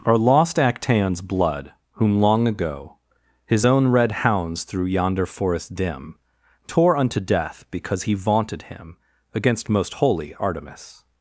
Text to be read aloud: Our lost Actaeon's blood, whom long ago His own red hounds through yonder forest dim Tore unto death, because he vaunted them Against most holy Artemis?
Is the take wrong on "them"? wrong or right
wrong